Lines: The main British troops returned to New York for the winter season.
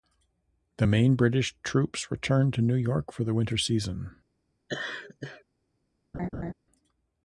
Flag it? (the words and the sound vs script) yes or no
yes